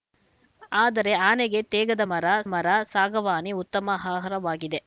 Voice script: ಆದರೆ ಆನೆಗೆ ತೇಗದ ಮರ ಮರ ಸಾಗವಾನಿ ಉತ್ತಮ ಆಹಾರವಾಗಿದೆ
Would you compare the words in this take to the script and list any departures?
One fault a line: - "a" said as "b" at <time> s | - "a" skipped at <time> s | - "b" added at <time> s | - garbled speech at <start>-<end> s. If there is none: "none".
none